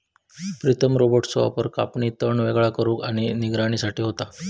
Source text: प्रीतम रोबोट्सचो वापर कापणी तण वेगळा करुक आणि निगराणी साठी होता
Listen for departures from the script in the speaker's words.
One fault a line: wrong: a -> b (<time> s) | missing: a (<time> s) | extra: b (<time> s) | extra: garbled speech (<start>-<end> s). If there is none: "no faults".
no faults